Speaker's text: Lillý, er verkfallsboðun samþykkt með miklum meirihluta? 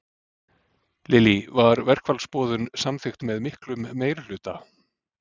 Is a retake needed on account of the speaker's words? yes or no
yes